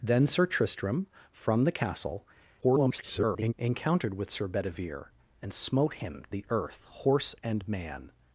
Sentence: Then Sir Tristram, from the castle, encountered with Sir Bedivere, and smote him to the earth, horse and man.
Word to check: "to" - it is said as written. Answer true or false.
false